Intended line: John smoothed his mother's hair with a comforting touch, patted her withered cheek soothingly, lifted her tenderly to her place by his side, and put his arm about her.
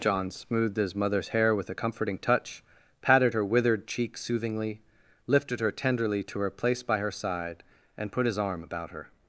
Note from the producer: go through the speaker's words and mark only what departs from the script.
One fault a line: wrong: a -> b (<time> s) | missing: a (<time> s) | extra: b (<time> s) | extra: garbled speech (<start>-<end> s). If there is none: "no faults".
wrong: his -> her (7.0 s)